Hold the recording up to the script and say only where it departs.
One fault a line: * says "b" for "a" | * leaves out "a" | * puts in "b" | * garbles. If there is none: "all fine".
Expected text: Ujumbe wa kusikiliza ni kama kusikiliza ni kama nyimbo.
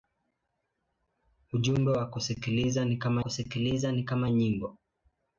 all fine